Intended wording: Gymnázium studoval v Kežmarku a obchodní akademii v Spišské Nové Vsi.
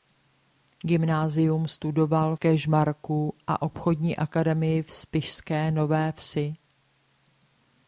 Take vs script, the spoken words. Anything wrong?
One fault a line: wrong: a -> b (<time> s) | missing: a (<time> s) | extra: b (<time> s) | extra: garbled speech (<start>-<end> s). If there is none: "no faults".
missing: v (2.4 s)